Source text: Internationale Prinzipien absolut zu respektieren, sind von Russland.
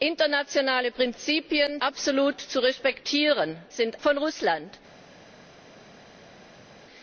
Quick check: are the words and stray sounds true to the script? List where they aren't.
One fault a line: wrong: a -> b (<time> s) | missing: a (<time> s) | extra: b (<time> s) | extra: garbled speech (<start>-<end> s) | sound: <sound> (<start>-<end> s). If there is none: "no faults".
no faults